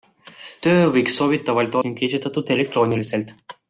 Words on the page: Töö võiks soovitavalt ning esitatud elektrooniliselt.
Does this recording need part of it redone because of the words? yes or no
no